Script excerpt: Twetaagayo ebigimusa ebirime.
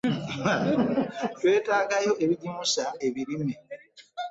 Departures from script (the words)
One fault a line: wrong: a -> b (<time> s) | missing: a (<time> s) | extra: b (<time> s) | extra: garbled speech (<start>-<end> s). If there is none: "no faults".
no faults